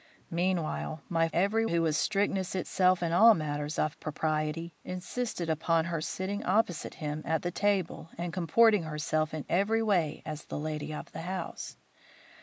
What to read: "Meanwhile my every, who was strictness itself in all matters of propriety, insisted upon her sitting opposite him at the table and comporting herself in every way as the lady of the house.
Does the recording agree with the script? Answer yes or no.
yes